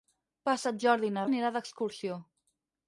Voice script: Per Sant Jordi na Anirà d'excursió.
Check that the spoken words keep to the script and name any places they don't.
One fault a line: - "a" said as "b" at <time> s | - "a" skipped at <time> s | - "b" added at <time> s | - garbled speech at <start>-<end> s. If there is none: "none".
none